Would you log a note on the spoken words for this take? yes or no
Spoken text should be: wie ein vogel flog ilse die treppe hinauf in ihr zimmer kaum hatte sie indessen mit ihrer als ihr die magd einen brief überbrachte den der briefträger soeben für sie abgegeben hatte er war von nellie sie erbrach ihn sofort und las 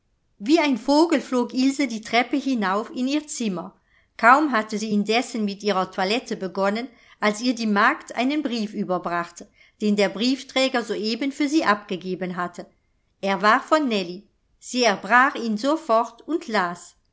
yes